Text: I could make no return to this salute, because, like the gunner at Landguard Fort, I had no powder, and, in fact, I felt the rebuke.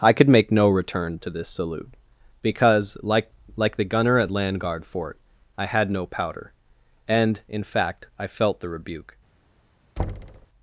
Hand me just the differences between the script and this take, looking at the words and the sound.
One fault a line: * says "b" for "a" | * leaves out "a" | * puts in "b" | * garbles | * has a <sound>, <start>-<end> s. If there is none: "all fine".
* puts in "like"
* has a thud, 10.0-10.5 s